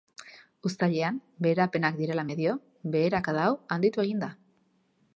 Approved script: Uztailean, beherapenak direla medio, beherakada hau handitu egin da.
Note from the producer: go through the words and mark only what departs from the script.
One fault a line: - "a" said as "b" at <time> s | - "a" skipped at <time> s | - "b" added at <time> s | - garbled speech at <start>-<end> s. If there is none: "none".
none